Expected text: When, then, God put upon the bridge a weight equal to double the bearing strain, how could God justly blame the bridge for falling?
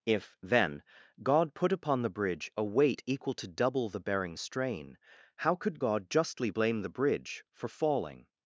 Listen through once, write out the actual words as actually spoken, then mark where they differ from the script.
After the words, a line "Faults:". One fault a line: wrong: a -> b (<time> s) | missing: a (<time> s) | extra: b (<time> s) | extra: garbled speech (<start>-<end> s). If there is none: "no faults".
If, then, God put upon the bridge a weight equal to double the bearing strain, how could God justly blame the bridge for falling?
Faults:
wrong: When -> If (0.1 s)